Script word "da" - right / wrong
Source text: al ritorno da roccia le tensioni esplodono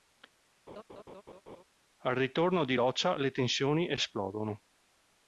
wrong